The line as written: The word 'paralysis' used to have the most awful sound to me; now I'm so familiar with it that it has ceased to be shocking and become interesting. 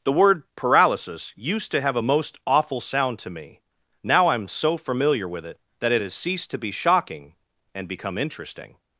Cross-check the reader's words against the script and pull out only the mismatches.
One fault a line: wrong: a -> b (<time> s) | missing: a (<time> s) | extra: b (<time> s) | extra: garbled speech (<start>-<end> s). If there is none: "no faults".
wrong: the -> a (1.9 s)